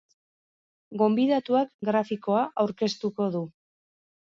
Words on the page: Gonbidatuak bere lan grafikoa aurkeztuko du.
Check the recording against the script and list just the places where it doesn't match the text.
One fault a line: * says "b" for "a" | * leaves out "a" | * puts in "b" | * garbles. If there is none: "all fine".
* leaves out "bere lan"